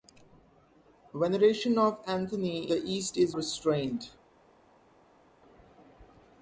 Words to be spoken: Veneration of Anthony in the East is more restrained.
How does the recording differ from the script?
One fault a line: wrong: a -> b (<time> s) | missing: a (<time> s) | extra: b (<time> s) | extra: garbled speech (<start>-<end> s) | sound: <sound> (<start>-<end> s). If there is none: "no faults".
missing: in (2.7 s)
missing: more (3.4 s)